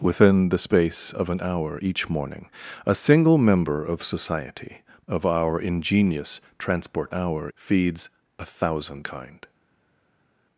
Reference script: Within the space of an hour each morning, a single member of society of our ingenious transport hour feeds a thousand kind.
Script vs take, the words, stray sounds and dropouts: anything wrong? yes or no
no